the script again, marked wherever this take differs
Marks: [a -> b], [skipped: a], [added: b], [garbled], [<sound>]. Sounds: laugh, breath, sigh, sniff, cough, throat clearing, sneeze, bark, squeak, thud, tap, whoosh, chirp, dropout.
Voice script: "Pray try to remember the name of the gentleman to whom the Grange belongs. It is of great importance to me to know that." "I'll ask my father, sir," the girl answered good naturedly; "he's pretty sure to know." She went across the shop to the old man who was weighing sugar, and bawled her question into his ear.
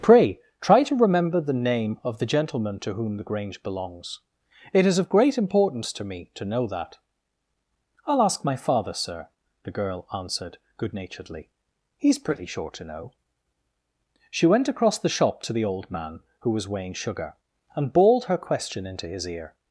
"Pray try to remember the name of the gentleman to whom the Grange belongs. It is of great importance to me to know that." "I'll ask my father, sir," the girl answered good naturedly; "he's pretty sure to know." She went across the shop to the old man who was weighing sugar, and bawled her question into his ear.